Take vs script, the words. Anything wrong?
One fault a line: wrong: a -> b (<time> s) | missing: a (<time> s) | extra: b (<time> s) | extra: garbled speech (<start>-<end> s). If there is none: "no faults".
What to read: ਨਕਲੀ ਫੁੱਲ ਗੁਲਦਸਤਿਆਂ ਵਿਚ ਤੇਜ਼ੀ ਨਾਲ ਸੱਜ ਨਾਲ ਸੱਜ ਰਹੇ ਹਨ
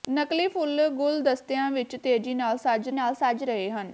no faults